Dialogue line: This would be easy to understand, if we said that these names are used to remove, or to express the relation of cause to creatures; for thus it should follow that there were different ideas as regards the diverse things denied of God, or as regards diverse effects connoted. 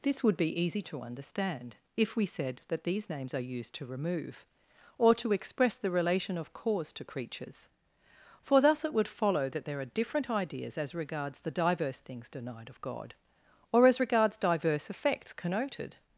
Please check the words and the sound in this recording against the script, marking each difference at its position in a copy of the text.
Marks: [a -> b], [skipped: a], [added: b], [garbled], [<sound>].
This would be easy to understand, if we said that these names are used to remove, or to express the relation of cause to creatures; for thus it [should -> would] follow that there [were -> are] different ideas as regards the diverse things denied of God, or as regards diverse effects connoted.